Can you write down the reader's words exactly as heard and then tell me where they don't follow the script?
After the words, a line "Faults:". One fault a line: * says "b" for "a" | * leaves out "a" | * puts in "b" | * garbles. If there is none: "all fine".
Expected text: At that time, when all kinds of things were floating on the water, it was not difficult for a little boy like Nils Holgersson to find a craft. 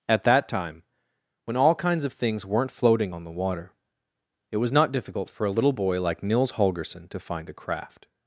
At that time, when all kinds of things weren't floating on the water, it was not difficult for a little boy like Nils Holgersson to find a craft.
Faults:
* says "weren't" for "were"